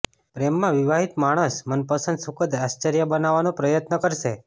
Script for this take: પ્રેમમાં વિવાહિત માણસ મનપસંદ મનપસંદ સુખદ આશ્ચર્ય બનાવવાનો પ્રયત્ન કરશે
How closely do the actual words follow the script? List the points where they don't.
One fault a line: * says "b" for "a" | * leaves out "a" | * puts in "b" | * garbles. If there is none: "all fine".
* leaves out "મનપસંદ"